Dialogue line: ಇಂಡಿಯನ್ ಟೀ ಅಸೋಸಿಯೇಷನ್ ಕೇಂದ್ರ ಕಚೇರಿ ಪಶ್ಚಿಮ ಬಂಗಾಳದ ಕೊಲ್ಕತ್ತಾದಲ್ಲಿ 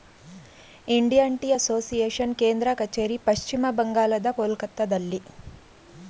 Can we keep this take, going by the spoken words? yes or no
yes